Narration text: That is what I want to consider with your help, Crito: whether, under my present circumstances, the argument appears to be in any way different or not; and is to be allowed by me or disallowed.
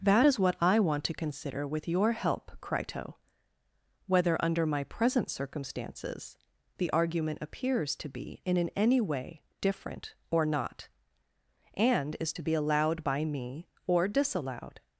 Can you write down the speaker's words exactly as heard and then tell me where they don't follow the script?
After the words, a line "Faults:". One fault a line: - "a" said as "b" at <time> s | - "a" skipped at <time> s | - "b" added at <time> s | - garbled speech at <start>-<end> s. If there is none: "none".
That is what I want to consider with your help, Crito: whether, under my present circumstances, the argument appears to be in in any way different or not; and is to be allowed by me or disallowed.
Faults:
- "in" added at 8.6 s